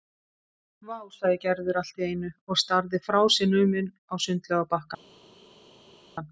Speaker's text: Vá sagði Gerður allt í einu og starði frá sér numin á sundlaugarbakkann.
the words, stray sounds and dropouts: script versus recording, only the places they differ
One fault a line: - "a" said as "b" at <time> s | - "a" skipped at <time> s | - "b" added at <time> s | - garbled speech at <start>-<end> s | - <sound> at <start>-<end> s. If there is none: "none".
none